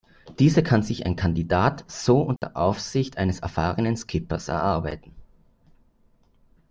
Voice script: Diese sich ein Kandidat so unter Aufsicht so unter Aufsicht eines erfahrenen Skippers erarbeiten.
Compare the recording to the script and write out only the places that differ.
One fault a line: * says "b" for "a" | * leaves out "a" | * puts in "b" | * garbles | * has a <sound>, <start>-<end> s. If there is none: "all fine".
* puts in "kann"
* has a dropout, 2.4-2.4 s
* leaves out "so unter Aufsicht"